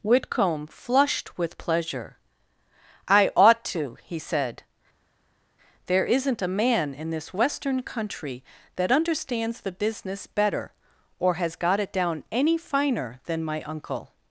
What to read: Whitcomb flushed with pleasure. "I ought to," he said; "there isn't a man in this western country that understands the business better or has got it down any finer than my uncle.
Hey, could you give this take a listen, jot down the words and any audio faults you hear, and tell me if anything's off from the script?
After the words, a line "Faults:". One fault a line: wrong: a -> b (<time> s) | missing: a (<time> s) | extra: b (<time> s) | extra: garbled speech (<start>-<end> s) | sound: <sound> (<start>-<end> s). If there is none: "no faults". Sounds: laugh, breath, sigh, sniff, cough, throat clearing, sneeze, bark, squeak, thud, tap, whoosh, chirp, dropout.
Whitcomb flushed with pleasure. "I ought to," he said; "there isn't a man in this western country that understands the business better or has got it down any finer than my uncle.
Faults:
no faults